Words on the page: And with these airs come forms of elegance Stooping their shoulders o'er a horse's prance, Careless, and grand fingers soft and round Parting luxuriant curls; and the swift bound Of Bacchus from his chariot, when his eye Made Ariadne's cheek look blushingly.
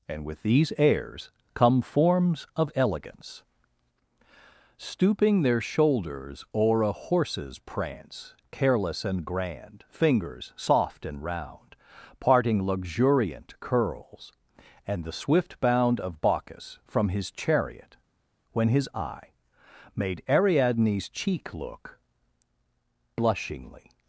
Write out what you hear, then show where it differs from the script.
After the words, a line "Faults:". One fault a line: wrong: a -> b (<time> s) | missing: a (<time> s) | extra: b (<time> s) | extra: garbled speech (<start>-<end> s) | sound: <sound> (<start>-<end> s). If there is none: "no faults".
And with these airs come forms of elegance Stooping their shoulders o'er a horse's prance, Careless, and grand fingers soft and round Parting luxuriant curls; and the swift bound Of Bacchus from his chariot, when his eye Made Ariadne's cheek look blushingly.
Faults:
no faults